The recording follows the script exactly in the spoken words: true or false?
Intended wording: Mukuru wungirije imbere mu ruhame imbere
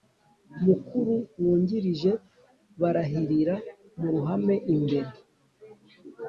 false